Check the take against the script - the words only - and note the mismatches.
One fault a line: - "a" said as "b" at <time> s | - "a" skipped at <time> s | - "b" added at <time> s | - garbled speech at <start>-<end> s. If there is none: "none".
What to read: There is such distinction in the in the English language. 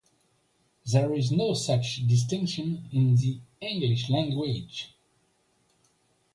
- "no" added at 1.3 s
- "in the" skipped at 3.4 s